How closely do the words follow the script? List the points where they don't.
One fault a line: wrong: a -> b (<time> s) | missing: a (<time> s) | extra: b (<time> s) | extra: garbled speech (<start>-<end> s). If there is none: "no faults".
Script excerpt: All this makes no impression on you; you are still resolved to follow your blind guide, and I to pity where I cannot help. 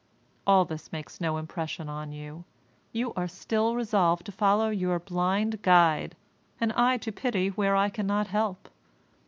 no faults